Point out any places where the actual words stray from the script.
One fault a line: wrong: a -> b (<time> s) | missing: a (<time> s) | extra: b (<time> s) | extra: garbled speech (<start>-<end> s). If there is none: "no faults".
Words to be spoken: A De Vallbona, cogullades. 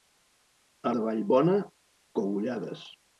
no faults